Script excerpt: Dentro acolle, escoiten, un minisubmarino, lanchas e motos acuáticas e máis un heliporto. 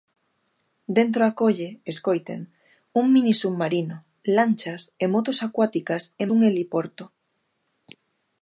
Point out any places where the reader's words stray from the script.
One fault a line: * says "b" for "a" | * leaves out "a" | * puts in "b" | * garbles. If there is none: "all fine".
* leaves out "máis"